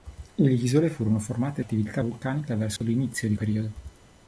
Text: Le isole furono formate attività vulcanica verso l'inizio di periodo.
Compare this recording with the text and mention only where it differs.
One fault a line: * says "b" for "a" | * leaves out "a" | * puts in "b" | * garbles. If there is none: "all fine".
all fine